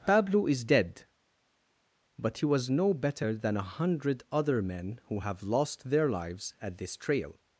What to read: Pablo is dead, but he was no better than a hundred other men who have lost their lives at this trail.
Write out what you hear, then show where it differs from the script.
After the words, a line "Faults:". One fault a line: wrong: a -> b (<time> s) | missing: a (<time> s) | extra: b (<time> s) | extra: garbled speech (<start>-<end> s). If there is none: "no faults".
Pablo is dead, but he was no better than a hundred other men who have lost their lives at this trail.
Faults:
no faults